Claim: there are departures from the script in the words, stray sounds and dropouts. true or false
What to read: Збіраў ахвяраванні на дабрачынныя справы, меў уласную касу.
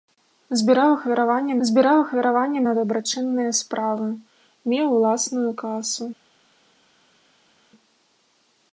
true